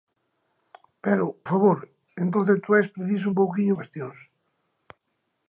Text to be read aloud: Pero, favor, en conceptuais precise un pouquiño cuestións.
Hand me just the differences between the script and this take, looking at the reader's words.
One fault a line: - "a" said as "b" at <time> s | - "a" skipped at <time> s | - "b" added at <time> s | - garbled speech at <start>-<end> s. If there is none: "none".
none